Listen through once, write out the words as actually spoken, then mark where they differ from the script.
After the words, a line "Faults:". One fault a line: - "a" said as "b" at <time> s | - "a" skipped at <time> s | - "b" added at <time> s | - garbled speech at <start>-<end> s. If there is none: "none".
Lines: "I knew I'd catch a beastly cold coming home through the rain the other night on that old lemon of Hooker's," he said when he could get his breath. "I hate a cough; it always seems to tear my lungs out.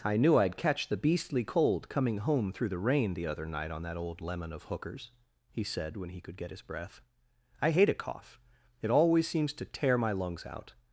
"I knew I'd catch the beastly cold coming home through the rain the other night on that old lemon of Hooker's," he said when he could get his breath. "I hate a cough; it always seems to tear my lungs out.
Faults:
- "a" said as "the" at 0.9 s